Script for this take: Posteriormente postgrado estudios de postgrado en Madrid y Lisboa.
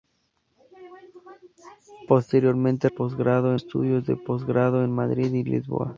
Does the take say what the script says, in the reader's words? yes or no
yes